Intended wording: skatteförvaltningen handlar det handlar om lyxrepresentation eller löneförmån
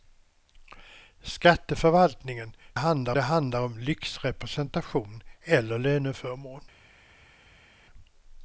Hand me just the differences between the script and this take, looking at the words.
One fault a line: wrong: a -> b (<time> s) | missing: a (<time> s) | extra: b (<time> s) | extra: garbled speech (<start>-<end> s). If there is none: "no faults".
no faults